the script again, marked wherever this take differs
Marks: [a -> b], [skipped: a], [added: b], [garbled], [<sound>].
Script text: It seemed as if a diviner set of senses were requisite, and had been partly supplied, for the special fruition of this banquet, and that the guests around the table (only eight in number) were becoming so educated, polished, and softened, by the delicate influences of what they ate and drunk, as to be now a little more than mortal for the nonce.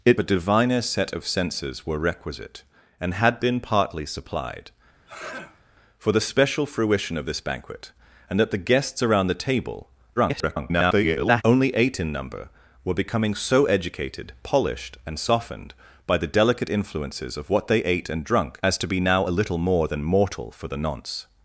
It [skipped: seemed as if] a diviner set of senses were requisite, and had been partly supplied, [sneeze] for the special fruition of this banquet, and that the guests around the table [garbled] (only eight in number) were becoming so educated, polished, and softened, by the delicate influences of what they ate and drunk, as to be now a little more than mortal for the nonce.